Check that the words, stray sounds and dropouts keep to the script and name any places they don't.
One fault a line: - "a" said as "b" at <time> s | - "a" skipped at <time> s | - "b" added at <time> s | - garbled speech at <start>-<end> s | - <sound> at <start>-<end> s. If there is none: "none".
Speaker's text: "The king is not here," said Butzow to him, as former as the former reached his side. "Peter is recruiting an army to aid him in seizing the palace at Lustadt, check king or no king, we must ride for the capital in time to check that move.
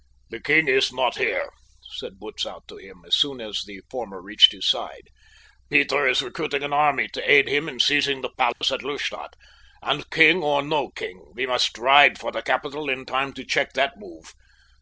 - "former" said as "soon" at 3.2 s
- dropout at 8.5-8.6 s
- "check" said as "and" at 9.8 s